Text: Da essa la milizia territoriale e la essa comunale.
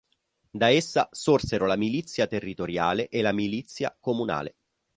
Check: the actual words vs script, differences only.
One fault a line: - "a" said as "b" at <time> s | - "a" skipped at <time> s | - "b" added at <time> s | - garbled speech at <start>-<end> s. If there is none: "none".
- "sorsero" added at 1.1 s
- "essa" said as "milizia" at 3.3 s